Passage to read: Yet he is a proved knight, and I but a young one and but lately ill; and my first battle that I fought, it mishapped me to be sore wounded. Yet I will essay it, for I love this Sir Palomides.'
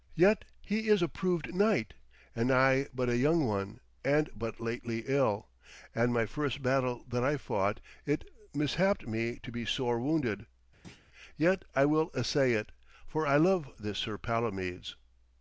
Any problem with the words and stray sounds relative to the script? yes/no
yes